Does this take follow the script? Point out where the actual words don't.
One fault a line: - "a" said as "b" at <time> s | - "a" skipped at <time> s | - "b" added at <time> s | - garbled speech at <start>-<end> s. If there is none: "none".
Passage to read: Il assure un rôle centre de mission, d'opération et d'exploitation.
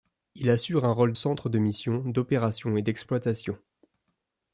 none